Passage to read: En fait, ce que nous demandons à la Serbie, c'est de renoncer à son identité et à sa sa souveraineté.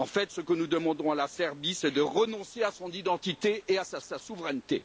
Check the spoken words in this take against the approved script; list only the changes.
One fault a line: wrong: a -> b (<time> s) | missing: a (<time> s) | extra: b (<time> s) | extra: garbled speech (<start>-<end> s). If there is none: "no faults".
no faults